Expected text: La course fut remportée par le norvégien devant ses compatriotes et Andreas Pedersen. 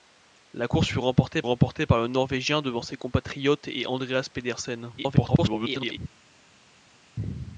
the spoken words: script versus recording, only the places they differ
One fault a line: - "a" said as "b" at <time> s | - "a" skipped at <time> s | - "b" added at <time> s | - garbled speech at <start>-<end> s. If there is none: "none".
- "remportée" added at 1.4 s
- garbled speech at 5.0-6.0 s